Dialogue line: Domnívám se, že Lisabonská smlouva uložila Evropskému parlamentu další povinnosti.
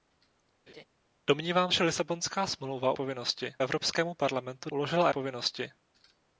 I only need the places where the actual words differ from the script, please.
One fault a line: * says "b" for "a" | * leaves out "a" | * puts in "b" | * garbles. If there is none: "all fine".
* leaves out "se"
* says "povinnosti" for "uložila"
* says "uložila" for "další"